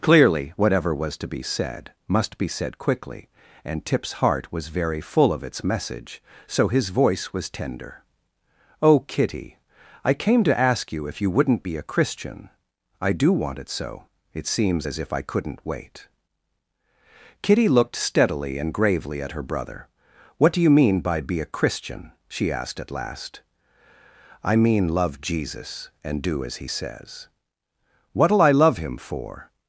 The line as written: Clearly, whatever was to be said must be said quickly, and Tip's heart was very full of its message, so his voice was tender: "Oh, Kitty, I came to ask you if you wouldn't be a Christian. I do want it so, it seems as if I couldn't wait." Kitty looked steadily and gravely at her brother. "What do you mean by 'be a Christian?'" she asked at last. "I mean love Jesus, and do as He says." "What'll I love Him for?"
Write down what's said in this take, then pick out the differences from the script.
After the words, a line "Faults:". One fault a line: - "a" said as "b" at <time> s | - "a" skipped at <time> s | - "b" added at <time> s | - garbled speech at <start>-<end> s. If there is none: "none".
Clearly, whatever was to be said must be said quickly, and Tip's heart was very full of its message, so his voice was tender: "Oh, Kitty, I came to ask you if you wouldn't be a Christian. I do want it so, it seems as if I couldn't wait." Kitty looked steadily and gravely at her brother. "What do you mean by 'be a Christian?'" she asked at last. "I mean love Jesus, and do as He says." "What'll I love Him for?"
Faults:
none